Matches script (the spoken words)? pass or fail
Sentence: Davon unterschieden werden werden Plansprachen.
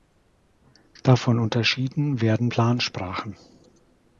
fail